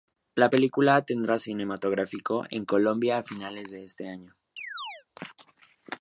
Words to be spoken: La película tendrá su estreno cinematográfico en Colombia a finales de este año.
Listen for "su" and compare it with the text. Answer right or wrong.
wrong